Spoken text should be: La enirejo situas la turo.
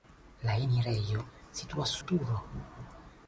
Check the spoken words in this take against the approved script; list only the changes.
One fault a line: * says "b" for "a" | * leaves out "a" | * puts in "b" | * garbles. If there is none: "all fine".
all fine